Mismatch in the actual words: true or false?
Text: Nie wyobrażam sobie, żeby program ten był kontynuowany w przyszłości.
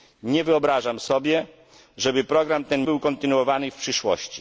false